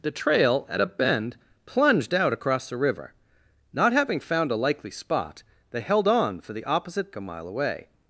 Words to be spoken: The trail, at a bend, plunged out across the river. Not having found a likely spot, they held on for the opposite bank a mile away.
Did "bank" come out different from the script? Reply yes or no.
yes